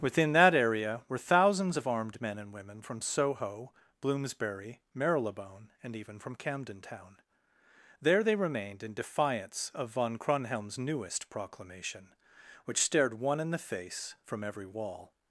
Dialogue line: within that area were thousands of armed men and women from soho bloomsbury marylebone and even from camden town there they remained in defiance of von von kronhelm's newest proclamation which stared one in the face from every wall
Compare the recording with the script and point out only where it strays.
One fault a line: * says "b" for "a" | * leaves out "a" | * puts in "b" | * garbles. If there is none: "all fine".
* leaves out "von"